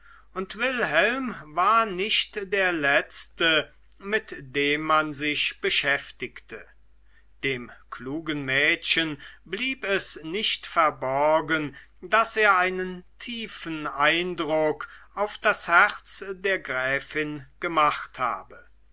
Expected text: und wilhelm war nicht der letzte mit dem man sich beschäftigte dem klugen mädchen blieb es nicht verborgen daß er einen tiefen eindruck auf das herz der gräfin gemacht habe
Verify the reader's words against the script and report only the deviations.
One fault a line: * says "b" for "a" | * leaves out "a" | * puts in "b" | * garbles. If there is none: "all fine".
all fine